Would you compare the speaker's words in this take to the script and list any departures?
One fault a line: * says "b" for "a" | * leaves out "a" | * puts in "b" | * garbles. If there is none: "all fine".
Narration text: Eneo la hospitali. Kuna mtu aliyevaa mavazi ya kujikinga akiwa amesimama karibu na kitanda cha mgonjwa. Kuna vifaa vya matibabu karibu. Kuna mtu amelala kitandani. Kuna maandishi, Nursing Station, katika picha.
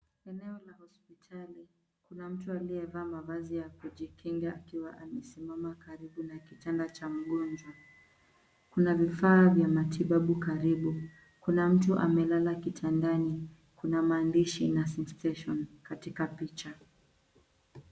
all fine